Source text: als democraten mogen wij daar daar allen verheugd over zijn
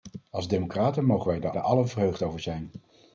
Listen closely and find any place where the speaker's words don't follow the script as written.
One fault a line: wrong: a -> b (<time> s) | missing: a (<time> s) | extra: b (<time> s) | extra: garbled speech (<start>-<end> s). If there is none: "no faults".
no faults